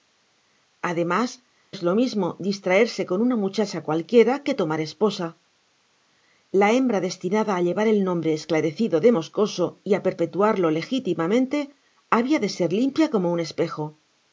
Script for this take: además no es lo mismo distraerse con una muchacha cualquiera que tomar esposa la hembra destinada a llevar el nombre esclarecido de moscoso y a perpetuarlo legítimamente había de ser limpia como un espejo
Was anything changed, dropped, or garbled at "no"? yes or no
yes